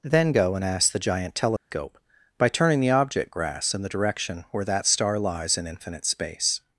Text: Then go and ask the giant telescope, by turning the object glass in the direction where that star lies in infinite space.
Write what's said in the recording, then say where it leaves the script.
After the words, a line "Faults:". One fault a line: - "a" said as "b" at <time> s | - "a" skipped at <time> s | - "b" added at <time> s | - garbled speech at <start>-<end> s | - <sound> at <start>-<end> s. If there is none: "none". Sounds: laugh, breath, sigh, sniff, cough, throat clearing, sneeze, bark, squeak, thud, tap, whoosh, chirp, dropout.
Then go and ask the giant telescope, by turning the object grass in the direction where that star lies in infinite space.
Faults:
- dropout at 1.6-1.7 s
- "glass" said as "grass" at 3.3 s